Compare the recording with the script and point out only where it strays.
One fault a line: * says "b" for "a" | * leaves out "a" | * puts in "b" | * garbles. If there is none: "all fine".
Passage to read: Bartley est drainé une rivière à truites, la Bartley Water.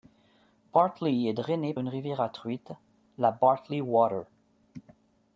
all fine